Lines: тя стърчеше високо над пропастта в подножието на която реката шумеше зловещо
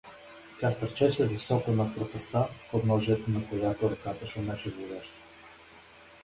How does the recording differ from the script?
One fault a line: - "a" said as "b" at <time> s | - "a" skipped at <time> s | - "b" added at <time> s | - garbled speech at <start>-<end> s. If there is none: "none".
none